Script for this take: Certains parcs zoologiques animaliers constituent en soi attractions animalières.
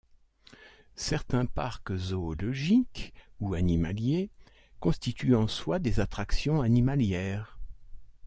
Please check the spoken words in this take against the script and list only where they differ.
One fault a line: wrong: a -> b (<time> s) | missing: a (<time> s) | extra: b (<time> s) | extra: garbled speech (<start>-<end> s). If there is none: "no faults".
extra: ou (3.4 s)
extra: des (5.8 s)